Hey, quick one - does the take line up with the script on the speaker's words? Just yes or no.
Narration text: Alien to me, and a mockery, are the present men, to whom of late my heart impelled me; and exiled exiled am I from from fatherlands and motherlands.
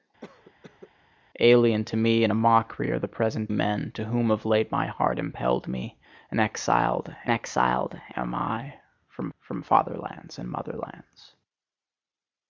yes